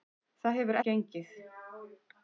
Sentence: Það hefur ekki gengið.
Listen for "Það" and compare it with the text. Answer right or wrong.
right